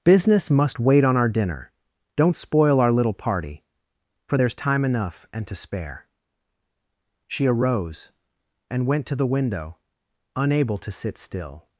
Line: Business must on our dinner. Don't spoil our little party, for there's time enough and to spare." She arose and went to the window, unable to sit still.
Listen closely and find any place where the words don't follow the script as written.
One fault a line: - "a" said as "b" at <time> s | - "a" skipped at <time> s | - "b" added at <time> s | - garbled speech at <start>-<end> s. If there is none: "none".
- "wait" added at 0.8 s